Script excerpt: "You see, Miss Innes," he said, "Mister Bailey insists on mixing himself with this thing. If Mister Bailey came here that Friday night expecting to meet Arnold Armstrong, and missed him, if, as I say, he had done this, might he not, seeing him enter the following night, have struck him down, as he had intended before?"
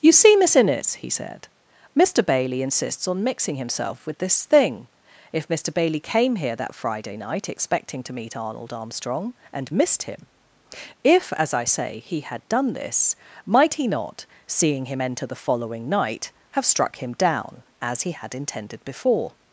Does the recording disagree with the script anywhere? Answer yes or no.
no